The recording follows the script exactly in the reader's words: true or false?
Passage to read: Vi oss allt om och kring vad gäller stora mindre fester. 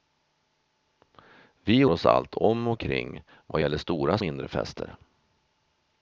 true